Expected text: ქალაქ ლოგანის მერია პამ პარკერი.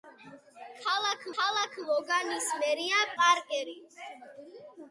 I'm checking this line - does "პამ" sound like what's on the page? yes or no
no